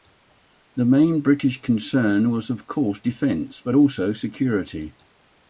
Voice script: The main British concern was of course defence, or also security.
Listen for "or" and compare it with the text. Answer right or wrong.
wrong